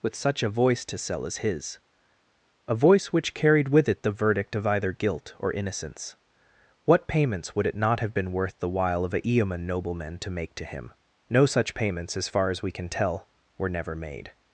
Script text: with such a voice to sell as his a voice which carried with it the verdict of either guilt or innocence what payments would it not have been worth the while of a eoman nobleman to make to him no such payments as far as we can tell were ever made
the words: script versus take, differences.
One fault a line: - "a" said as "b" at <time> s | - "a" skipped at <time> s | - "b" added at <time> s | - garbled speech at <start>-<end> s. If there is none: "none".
- "ever" said as "never" at 13.7 s